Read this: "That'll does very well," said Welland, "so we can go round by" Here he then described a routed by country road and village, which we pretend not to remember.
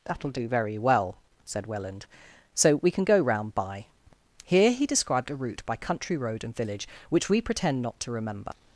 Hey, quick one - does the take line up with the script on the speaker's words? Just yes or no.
no